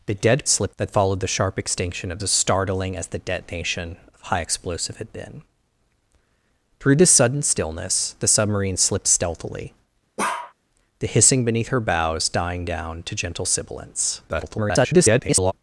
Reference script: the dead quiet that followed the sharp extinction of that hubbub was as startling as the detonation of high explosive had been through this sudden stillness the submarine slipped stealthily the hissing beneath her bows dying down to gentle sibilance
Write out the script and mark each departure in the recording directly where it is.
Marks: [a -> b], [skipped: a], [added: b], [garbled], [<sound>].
the dead [quiet -> slipped] that followed the sharp extinction of [skipped: that hubbub was] as startling as the detonation of high explosive had been through this sudden stillness the submarine slipped stealthily [bark] the hissing beneath her bows dying down to gentle sibilance [garbled]